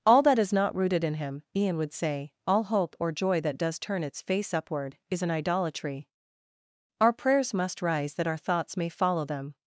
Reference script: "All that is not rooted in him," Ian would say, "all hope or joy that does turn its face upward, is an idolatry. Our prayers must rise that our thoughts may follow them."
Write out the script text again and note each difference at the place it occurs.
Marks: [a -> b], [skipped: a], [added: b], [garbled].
"All that is not rooted in him," Ian would say, "all hope or joy that does turn its face upward, is an idolatry. Our prayers must rise that our thoughts may follow them."